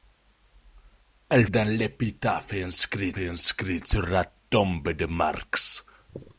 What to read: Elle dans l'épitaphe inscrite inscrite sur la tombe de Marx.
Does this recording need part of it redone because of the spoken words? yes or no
no